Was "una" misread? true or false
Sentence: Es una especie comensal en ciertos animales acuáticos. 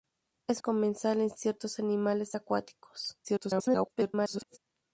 true